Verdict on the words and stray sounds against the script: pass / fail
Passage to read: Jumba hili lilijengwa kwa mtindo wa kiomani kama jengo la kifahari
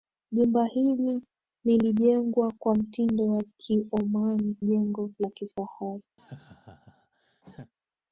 fail